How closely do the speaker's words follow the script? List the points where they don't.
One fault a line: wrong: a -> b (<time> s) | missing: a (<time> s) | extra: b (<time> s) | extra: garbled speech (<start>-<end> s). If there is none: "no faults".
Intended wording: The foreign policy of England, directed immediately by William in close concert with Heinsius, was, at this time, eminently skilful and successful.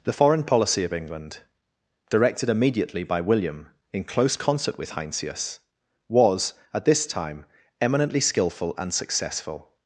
no faults